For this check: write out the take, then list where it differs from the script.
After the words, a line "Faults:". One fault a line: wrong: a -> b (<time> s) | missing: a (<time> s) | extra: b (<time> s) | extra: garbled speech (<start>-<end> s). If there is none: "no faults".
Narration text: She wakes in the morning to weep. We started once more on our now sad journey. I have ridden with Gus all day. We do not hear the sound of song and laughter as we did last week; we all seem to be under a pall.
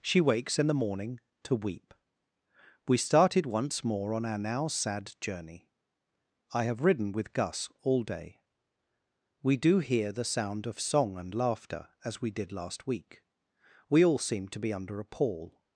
She wakes in the morning to weep. We started once more on our now sad journey. I have ridden with Gus all day. We do hear the sound of song and laughter as we did last week; we all seem to be under a pall.
Faults:
missing: not (9.8 s)